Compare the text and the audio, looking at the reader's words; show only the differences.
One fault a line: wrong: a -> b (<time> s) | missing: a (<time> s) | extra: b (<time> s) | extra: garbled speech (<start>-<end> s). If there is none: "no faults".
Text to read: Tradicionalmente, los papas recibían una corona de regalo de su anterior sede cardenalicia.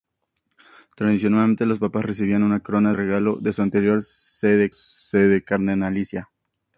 missing: de (2.9 s)
extra: sede (4.7 s)